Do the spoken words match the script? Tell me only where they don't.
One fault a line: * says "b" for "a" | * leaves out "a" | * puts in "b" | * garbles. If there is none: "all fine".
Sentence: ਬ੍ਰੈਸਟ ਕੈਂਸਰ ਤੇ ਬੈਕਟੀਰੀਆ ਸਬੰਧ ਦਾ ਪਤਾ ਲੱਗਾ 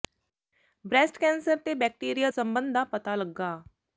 all fine